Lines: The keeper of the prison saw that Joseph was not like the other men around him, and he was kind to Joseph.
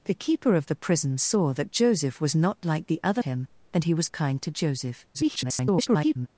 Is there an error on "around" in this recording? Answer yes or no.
yes